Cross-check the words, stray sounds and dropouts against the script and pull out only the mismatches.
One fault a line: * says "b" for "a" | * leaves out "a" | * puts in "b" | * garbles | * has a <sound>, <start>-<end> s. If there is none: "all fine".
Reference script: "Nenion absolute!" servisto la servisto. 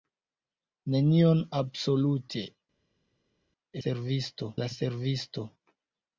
all fine